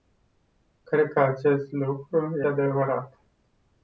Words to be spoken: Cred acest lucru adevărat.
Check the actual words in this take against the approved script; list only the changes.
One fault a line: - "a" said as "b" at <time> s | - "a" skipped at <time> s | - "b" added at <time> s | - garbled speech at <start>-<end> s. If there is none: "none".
none